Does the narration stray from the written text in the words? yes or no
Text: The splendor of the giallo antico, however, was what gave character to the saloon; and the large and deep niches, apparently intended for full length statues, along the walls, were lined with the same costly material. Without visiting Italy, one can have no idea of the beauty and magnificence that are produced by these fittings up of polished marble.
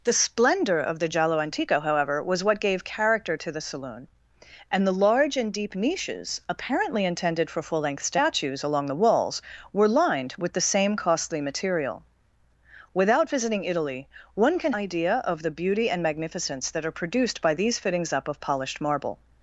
yes